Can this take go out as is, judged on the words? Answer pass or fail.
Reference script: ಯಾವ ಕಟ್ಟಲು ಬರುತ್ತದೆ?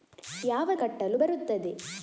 pass